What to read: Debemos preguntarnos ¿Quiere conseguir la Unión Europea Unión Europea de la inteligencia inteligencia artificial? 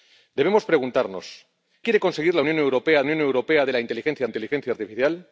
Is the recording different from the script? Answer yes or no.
no